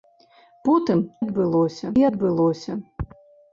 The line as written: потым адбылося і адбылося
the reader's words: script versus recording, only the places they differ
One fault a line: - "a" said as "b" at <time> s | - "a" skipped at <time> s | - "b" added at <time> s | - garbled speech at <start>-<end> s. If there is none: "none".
none